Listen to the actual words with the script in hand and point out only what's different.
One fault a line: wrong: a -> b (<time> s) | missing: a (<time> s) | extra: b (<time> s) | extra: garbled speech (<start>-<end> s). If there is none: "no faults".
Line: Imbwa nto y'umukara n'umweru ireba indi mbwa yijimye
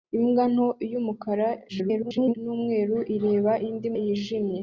extra: garbled speech (1.7-2.3 s)
missing: mbwa (3.9 s)